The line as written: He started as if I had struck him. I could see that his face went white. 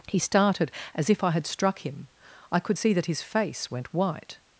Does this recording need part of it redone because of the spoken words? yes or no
no